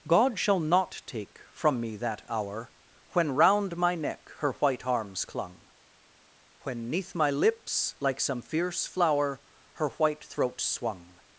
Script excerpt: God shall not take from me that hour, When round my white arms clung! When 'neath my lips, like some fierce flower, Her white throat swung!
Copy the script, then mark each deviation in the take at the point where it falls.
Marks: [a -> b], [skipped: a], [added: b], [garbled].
God shall not take from me that hour, When round my [added: neck her] white arms clung! When 'neath my lips, like some fierce flower, Her white throat swung!